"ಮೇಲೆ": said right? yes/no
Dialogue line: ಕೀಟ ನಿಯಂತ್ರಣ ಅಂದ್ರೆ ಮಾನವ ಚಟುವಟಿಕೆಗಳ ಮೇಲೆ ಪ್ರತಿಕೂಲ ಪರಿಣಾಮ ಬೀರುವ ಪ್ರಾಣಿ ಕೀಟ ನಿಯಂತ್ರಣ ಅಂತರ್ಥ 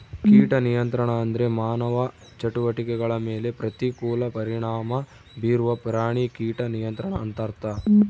yes